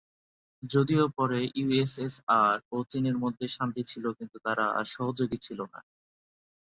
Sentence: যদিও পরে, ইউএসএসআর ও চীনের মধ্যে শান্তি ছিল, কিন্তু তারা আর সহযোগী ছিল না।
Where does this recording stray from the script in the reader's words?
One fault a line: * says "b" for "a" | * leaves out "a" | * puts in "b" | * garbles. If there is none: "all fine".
all fine